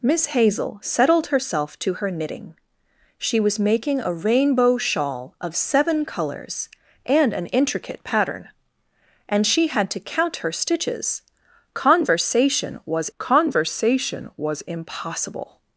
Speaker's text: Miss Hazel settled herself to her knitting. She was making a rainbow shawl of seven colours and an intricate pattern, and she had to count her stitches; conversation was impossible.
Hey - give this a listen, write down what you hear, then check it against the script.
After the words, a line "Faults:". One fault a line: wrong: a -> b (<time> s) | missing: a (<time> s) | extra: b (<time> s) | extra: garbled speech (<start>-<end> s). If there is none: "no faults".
Miss Hazel settled herself to her knitting. She was making a rainbow shawl of seven colours and an intricate pattern, and she had to count her stitches; conversation was conversation was impossible.
Faults:
extra: conversation was (13.2 s)